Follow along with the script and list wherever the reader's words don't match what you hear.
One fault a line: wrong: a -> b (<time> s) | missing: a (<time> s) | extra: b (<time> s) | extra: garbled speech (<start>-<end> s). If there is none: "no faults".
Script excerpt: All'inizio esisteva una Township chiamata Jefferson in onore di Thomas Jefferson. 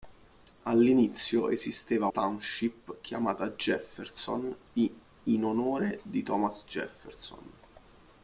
missing: una (2.1 s)